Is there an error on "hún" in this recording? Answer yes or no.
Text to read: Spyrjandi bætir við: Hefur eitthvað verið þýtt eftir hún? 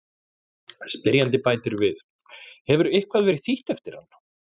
yes